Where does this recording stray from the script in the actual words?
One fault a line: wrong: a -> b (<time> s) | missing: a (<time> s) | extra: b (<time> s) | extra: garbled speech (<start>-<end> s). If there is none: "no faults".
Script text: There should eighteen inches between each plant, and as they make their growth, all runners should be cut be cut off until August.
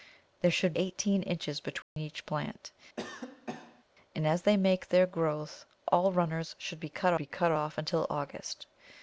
no faults